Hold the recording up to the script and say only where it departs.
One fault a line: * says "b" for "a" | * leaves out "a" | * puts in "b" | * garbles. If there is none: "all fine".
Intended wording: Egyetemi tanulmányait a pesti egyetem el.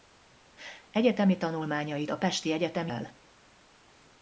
all fine